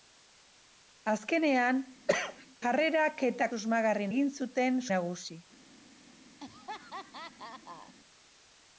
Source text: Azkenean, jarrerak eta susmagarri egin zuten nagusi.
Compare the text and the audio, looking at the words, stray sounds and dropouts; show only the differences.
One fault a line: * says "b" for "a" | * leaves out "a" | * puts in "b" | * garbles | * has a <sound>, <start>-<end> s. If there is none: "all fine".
* has a cough, 2.1-2.5 s
* has a laugh, 6.4-7.9 s